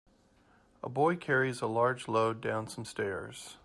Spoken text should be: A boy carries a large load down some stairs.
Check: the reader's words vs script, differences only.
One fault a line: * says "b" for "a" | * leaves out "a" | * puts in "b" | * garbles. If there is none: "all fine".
all fine